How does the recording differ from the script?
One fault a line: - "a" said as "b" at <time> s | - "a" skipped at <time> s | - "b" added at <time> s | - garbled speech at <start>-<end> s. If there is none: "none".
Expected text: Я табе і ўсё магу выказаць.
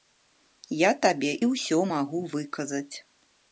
none